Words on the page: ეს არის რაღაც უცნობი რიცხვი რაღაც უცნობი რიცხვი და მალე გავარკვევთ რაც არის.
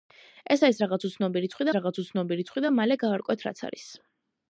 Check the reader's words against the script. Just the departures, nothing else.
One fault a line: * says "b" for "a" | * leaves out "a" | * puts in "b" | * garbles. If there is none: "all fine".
all fine